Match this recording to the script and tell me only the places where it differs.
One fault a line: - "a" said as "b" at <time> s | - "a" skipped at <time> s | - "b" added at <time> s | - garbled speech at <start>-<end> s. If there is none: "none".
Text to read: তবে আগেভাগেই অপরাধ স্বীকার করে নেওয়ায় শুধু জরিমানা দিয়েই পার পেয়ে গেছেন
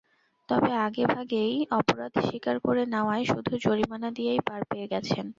none